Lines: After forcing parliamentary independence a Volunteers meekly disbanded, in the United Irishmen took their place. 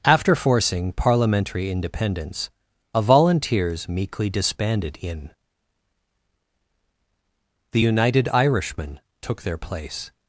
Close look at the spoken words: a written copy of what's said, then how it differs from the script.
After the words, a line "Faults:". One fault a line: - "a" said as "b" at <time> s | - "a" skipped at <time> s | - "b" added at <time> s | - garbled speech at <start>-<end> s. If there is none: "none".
After forcing parliamentary independence a Volunteers meekly disbanded, in the United Irishmen took their place.
Faults:
none